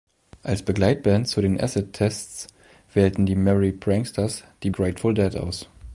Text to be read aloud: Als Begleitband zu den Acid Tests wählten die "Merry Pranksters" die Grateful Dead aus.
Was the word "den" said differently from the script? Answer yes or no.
no